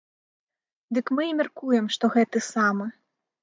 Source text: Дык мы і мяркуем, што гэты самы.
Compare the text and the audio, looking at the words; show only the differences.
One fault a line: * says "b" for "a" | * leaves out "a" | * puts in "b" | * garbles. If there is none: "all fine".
all fine